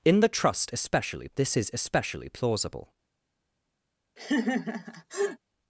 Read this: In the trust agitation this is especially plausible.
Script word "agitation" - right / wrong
wrong